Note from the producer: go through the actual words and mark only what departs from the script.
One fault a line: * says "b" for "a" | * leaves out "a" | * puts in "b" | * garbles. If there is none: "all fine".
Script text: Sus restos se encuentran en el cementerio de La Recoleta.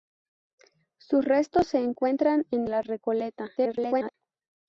* leaves out "el cementerio de"
* garbles